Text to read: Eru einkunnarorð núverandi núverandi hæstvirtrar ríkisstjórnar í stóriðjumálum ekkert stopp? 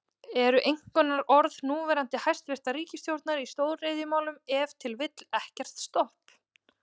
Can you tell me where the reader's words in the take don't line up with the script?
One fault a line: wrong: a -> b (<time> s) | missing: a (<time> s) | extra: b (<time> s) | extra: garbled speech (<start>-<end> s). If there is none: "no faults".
missing: núverandi (2.2 s)
extra: ef til vill (4.6 s)